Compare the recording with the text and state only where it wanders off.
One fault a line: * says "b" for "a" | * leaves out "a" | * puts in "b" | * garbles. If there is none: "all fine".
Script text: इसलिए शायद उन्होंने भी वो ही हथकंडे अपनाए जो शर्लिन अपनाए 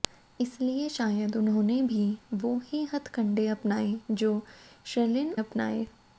all fine